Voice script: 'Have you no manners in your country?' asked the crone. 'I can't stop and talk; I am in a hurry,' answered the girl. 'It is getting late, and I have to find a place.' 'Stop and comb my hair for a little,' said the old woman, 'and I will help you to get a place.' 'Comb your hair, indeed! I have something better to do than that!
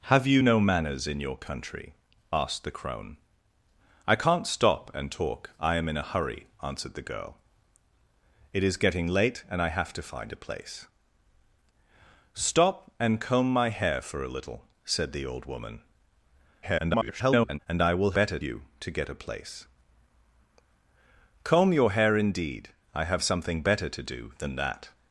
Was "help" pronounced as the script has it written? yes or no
no